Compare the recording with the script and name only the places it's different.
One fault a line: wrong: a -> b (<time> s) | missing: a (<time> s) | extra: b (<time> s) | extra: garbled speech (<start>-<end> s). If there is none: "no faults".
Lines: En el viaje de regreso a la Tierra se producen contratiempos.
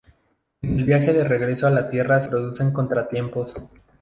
missing: se (2.2 s)